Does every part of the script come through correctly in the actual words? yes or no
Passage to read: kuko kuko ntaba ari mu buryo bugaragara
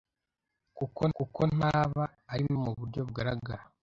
yes